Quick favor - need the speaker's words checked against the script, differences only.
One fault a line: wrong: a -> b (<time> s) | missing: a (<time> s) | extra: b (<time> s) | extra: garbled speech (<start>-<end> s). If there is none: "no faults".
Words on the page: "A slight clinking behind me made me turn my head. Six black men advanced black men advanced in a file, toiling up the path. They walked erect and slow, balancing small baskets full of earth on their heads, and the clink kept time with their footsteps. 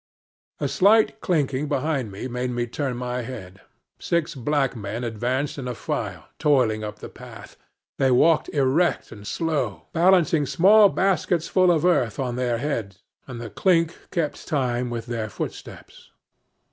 missing: black men advanced (5.6 s)